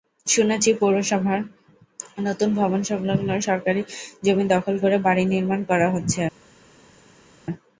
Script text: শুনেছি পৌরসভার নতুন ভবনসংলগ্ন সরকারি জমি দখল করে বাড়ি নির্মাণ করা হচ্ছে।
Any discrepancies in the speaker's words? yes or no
no